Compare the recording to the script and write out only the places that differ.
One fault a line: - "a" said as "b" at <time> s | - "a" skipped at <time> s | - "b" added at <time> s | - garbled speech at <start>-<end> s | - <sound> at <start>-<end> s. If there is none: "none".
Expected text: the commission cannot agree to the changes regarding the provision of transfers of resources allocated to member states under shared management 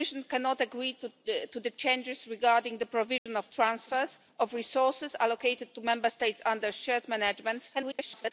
- dropout at 3.2-3.3 s
- garbled speech at 7.7-8.3 s